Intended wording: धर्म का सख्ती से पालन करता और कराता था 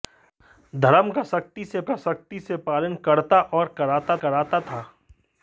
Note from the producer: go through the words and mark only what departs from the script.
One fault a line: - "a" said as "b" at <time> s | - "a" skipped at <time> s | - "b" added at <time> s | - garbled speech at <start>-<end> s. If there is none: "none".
- "का सख्ती से" added at 1.8 s
- "कराता" added at 4.2 s